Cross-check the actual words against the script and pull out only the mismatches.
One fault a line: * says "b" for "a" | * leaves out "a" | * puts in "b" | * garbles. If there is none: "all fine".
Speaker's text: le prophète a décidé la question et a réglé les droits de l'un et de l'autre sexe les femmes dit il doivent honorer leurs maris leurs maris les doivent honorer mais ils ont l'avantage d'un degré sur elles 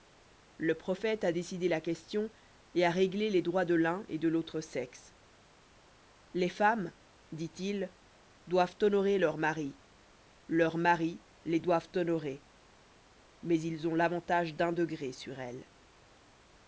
all fine